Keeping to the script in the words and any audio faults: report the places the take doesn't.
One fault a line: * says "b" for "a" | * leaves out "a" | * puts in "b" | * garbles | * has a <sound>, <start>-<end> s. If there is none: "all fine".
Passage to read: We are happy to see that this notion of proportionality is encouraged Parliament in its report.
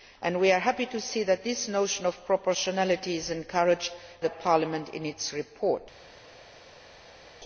all fine